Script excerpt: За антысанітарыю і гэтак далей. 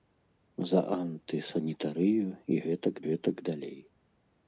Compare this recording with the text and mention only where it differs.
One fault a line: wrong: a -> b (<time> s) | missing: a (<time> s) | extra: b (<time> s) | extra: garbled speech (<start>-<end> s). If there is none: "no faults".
extra: гэтак (3.0 s)